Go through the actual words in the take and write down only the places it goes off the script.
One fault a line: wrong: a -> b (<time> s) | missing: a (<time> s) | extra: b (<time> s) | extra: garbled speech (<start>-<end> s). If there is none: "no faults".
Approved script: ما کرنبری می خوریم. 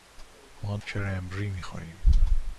no faults